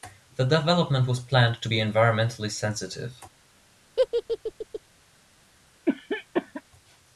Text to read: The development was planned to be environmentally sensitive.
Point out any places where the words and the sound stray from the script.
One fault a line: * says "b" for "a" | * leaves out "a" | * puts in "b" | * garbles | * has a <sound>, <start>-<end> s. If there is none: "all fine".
* has a laugh, 4.0-4.8 s
* has a cough, 5.9-6.6 s